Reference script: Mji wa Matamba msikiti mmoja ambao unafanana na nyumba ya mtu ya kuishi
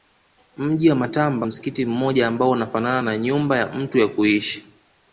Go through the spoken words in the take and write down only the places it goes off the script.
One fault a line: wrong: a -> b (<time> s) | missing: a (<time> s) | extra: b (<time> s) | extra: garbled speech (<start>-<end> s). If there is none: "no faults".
no faults